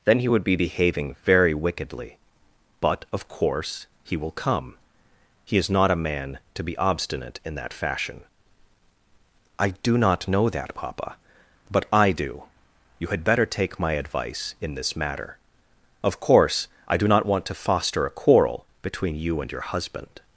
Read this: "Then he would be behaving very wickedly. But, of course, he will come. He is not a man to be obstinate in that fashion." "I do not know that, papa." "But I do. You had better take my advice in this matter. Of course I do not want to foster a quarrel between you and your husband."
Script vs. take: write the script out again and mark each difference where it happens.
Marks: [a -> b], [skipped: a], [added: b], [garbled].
"Then he would be behaving very wickedly. But, of course, he will come. He is not a man to be obstinate in that fashion." "I do not know that, papa." "But I do. You had better take my advice in this matter. Of course I do not want to foster a quarrel between you and your husband."